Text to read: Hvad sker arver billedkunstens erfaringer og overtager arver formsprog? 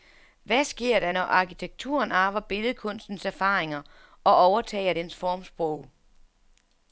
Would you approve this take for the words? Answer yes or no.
no